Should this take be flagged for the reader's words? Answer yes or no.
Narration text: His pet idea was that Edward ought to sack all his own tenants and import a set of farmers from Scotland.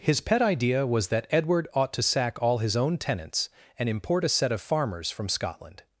no